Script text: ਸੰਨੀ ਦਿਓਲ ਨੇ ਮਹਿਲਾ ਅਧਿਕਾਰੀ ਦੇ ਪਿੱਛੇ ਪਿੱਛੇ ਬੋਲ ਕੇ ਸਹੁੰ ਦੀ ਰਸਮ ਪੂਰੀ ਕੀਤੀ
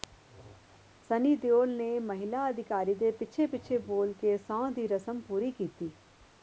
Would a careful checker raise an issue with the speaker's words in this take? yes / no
no